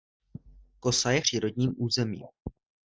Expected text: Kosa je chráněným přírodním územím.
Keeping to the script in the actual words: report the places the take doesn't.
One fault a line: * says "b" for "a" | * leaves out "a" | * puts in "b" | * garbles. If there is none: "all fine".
* leaves out "chráněným"